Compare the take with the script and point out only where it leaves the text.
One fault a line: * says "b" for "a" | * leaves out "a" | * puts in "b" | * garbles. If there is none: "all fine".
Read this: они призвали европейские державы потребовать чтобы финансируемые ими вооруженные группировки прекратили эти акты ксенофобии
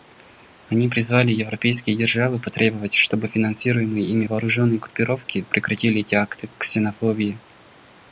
all fine